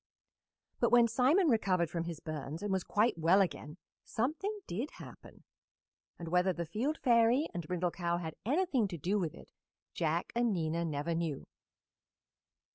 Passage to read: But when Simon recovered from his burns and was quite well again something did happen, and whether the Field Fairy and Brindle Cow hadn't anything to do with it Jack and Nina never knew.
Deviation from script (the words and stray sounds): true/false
true